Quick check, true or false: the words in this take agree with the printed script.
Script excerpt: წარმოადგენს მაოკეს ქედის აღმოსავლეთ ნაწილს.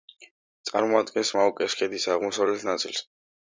true